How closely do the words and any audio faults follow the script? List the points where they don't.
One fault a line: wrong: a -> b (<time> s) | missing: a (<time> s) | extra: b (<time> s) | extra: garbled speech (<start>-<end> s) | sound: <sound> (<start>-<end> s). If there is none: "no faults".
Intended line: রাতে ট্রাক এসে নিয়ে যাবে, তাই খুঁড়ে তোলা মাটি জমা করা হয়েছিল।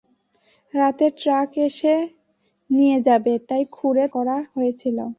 missing: তোলা মাটি জমা (4.0 s)